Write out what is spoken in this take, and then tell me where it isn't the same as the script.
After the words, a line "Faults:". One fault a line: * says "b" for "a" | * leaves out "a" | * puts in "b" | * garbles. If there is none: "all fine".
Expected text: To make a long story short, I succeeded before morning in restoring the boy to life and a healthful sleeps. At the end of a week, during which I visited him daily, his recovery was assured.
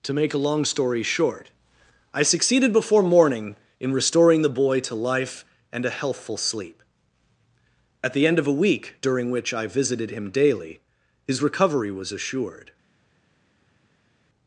To make a long story short, I succeeded before morning in restoring the boy to life and a healthful sleep. At the end of a week, during which I visited him daily, his recovery was assured.
Faults:
* says "sleep" for "sleeps"